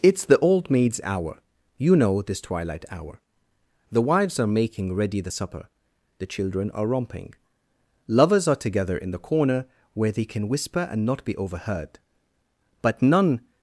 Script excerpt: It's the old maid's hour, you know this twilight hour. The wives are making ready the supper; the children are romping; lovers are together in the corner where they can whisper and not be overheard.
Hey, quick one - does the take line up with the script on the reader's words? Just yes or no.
no